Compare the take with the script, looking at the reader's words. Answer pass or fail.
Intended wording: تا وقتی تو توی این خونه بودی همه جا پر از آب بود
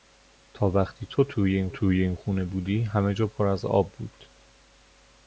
fail